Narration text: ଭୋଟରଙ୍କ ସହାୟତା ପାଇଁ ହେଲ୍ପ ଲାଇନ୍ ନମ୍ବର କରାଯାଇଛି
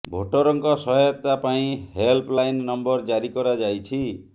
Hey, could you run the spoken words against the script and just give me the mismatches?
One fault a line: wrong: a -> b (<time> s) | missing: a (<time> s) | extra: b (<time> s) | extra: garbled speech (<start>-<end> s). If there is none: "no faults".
extra: ଜାରି (3.1 s)